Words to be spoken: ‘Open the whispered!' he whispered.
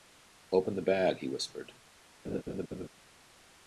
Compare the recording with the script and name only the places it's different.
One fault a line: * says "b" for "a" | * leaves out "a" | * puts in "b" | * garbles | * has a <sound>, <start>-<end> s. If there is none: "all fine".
* says "bag" for "whispered"
* has a laugh, 2.2-2.9 s